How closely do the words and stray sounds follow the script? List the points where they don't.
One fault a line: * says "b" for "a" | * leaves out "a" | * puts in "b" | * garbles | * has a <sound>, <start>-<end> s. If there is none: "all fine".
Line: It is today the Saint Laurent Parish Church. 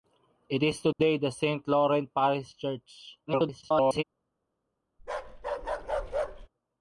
* has a dropout, 0.9-1.0 s
* garbles
* has a bark, 5.0-6.5 s